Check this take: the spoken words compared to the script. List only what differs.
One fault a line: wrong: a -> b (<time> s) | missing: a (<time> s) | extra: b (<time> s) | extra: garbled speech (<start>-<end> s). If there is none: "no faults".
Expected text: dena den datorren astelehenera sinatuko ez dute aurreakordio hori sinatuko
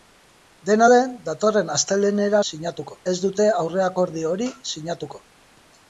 no faults